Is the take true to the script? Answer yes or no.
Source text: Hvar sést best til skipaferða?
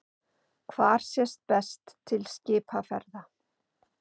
yes